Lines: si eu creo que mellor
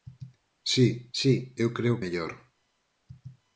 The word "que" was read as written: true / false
false